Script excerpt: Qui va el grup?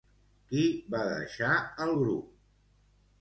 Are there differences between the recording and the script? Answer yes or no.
yes